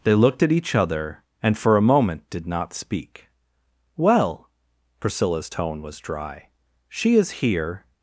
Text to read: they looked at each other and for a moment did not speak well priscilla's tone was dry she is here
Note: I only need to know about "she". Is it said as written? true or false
true